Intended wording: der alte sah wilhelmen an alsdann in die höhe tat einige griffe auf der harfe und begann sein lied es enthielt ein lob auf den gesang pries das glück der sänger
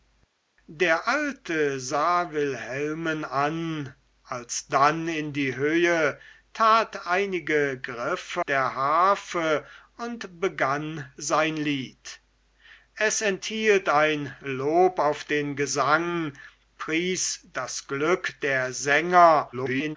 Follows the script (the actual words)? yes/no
no